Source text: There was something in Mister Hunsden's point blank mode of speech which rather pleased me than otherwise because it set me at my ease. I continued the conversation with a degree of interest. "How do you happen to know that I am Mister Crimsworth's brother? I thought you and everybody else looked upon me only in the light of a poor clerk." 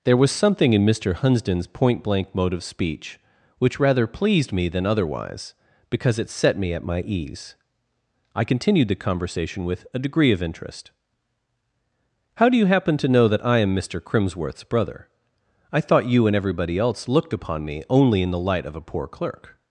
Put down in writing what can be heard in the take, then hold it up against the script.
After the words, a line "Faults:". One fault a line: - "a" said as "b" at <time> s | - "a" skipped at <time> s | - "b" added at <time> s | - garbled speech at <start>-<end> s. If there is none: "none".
There was something in Mister Hunsden's point blank mode of speech which rather pleased me than otherwise because it set me at my ease. I continued the conversation with a degree of interest. "How do you happen to know that I am Mister Crimsworth's brother? I thought you and everybody else looked upon me only in the light of a poor clerk."
Faults:
none